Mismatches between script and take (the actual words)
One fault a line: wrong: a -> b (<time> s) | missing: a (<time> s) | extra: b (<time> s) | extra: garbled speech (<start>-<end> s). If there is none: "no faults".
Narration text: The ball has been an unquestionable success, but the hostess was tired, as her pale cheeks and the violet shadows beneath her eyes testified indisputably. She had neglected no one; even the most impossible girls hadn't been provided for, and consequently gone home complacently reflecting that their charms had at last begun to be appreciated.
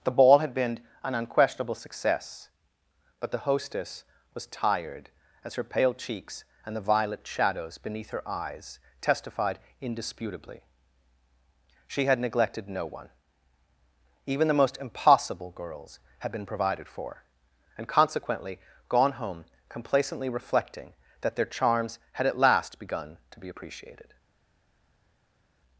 wrong: has -> had (0.4 s)
wrong: hadn't -> had (16.2 s)